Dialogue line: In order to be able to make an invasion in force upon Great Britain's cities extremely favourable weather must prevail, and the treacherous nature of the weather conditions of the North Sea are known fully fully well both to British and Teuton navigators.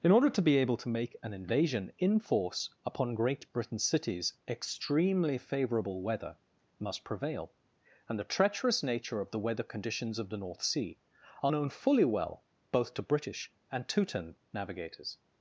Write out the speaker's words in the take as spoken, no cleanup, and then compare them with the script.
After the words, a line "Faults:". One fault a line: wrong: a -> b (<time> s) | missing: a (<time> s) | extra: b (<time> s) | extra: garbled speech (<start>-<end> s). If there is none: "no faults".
In order to be able to make an invasion in force upon Great Britain's cities extremely favourable weather must prevail, and the treacherous nature of the weather conditions of the North Sea are known fully well both to British and Teuton navigators.
Faults:
missing: fully (12.0 s)